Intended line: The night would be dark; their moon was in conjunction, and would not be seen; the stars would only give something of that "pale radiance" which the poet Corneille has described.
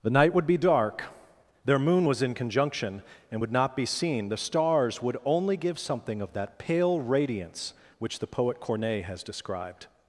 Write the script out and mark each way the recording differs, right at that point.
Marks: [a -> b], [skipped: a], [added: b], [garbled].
The night would be dark; their moon was in conjunction, and would not be seen; the stars would only give something of that "pale radiance" which the poet Corneille has described.